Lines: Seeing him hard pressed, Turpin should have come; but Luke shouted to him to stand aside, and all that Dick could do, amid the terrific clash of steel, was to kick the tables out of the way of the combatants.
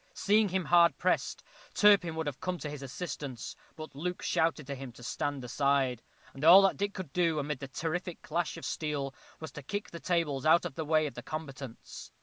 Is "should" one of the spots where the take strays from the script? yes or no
yes